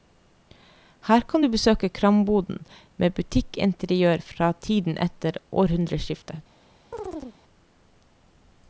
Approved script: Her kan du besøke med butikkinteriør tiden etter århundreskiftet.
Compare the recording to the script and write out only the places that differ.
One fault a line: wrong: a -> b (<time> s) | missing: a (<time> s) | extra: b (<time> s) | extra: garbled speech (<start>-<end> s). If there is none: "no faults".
extra: kramboden (2.0 s)
extra: fra (4.3 s)